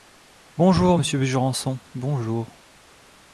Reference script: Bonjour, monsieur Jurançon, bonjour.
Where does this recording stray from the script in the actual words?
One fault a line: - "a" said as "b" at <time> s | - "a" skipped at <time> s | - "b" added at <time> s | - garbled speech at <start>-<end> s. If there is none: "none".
none